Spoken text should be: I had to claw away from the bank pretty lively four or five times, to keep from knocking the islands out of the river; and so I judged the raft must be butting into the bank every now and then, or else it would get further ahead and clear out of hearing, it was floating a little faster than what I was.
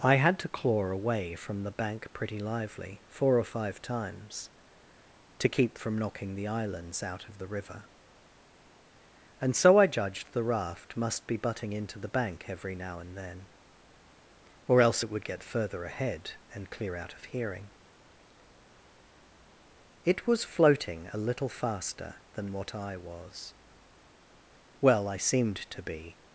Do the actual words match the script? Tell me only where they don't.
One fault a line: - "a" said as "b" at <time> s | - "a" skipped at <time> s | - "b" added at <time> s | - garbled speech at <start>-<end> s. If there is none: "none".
- "Well I seemed to be" added at 24.8 s